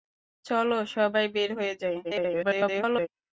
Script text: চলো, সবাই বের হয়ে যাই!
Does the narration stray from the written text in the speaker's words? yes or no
yes